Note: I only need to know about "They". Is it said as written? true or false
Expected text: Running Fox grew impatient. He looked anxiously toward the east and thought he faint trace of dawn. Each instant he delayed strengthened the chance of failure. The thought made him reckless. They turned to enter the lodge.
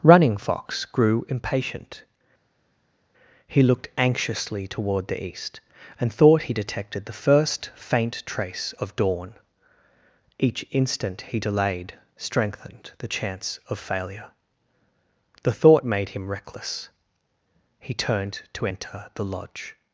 false